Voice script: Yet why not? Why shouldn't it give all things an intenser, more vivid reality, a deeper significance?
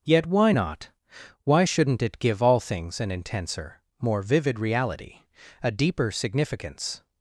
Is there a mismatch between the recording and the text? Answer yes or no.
no